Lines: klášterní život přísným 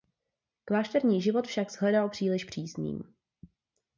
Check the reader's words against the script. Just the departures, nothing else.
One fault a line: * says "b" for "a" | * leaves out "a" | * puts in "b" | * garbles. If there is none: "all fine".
* puts in "však shledal příliš"